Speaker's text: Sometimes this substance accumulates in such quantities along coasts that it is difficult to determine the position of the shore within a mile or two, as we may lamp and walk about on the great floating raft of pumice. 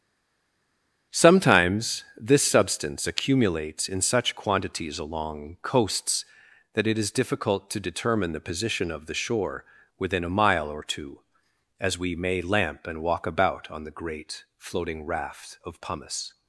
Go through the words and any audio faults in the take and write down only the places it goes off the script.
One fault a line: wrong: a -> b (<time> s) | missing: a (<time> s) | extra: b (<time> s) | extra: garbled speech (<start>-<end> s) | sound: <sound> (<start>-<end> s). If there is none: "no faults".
no faults